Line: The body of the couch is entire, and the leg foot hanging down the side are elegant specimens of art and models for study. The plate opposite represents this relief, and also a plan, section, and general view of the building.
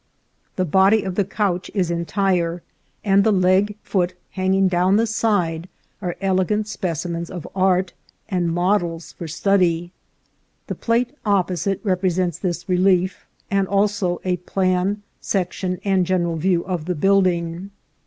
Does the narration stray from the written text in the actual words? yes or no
no